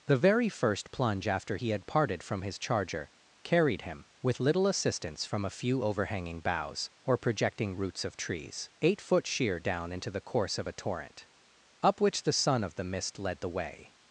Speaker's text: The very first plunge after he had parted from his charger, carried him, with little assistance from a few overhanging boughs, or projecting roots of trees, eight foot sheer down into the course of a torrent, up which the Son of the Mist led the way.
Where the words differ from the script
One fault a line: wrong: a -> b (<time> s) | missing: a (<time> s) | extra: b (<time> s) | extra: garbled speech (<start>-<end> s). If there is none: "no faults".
no faults